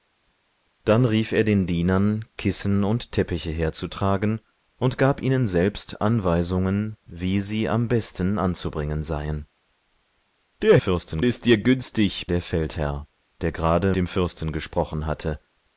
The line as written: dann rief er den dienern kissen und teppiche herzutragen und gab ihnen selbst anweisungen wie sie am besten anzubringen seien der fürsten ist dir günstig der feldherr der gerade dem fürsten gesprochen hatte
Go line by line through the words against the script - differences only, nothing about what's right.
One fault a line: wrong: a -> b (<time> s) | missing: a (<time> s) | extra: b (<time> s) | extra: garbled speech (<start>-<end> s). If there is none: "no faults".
no faults